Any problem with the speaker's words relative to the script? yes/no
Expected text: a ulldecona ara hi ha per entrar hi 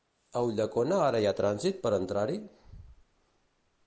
yes